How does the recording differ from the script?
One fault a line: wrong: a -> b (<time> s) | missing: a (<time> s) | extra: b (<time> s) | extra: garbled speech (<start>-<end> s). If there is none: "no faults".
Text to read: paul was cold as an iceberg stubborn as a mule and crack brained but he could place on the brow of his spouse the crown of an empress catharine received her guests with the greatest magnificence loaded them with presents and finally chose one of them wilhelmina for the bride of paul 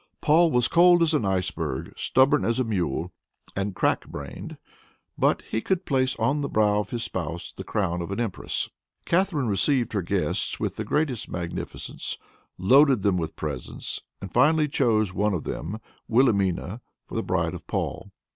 no faults